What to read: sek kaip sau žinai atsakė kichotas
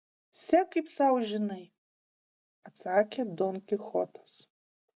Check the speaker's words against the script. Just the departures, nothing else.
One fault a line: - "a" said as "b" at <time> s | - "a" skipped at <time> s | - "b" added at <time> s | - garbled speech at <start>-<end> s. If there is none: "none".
- "don" added at 3.4 s